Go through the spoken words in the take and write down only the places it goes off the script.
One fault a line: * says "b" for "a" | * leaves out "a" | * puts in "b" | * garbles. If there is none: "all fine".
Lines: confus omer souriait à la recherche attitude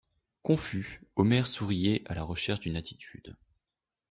* puts in "d'une"